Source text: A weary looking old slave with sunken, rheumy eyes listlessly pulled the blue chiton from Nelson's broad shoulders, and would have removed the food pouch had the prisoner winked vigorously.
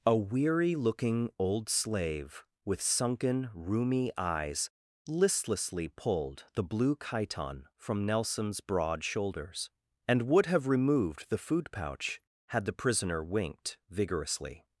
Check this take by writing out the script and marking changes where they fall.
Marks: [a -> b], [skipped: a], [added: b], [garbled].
A weary looking old slave with sunken, rheumy eyes listlessly pulled the blue chiton from Nelson's broad shoulders, and would have removed the food pouch had the prisoner winked vigorously.